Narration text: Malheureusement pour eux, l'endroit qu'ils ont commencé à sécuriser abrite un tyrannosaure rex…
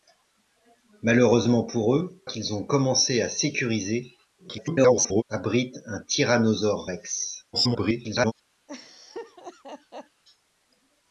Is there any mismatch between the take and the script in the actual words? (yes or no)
yes